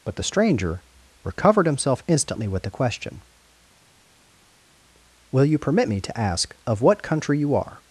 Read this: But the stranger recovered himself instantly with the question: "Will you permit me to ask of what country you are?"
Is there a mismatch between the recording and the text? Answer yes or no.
no